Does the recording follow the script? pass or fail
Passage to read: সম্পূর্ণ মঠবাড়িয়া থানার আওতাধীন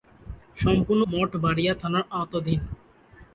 pass